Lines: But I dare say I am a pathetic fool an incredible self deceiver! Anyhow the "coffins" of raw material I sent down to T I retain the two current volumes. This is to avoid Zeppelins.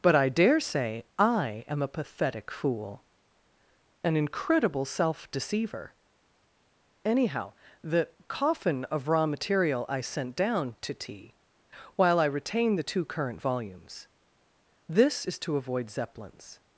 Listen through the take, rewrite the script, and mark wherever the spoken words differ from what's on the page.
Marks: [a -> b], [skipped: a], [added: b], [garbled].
But I dare say I am a pathetic fool an incredible self deceiver! Anyhow the ["coffins" -> coffin] of raw material I sent down to T [added: while] I retain the two current volumes. This is to avoid Zeppelins.